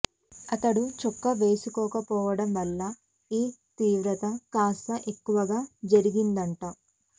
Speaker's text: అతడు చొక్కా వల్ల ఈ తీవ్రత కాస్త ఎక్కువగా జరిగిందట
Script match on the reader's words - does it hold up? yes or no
no